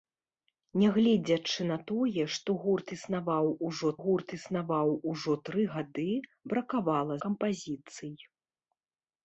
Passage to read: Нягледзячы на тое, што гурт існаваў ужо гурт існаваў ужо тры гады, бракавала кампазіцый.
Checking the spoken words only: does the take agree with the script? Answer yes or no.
yes